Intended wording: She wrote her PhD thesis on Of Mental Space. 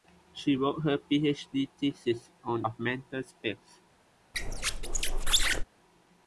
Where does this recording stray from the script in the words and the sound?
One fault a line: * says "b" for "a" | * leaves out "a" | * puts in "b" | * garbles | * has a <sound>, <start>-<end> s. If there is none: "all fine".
* has a squeak, 4.3-5.6 s